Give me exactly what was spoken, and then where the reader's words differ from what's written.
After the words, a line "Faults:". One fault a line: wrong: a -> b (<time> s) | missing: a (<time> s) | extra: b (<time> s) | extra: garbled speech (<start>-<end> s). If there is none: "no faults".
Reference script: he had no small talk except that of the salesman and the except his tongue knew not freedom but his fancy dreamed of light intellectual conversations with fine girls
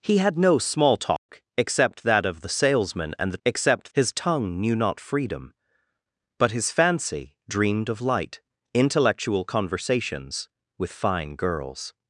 he had no small talk except that of the salesman and the except his tongue knew not freedom but his fancy dreamed of light intellectual conversations with fine girls
Faults:
no faults